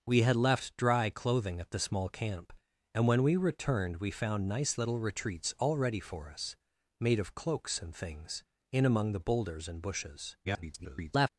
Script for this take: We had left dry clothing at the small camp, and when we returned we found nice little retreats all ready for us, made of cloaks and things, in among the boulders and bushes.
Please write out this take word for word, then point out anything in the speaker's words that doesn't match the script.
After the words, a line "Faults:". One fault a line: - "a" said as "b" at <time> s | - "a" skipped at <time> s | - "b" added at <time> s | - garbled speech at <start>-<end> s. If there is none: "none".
We had left dry clothing at the small camp, and when we returned we found nice little retreats all ready for us, made of cloaks and things, in among the boulders and bushes. [garbled]
Faults:
- garbled speech at 10.4-11.3 s